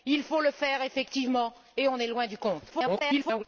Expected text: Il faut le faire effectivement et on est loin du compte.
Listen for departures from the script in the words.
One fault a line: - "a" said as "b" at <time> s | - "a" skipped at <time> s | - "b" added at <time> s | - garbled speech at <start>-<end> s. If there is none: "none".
- garbled speech at 2.7-3.4 s